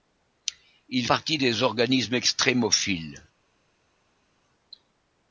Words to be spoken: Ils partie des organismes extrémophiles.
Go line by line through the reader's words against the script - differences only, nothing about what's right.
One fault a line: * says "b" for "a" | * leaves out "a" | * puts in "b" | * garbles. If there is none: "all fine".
all fine